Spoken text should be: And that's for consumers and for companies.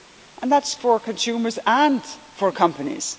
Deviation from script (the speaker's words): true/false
false